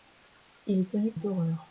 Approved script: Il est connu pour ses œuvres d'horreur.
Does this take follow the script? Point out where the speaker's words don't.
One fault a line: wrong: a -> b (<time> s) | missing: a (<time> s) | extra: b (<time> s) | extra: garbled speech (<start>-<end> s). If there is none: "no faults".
missing: pour ses œuvres (1.1 s)